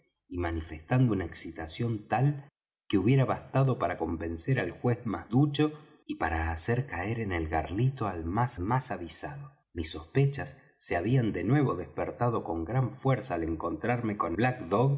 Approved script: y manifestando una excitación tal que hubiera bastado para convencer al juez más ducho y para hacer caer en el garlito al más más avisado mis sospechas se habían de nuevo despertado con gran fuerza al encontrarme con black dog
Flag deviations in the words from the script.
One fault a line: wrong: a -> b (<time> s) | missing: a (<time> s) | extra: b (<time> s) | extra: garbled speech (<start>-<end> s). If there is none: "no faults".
no faults